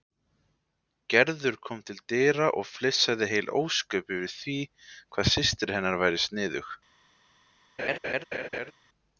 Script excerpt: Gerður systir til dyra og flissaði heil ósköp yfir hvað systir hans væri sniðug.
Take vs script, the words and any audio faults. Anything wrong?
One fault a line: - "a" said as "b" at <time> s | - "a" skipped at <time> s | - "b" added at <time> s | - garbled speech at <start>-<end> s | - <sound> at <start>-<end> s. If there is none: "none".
- "systir" said as "kom" at 1.7 s
- "því" added at 4.4 s
- "hans" said as "hennar" at 5.8 s
- laugh at 7.8-8.7 s